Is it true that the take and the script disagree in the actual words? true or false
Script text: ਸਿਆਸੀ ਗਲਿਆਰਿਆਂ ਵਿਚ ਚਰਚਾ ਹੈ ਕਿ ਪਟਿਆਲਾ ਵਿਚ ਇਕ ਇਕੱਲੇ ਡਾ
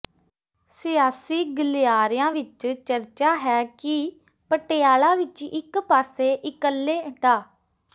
true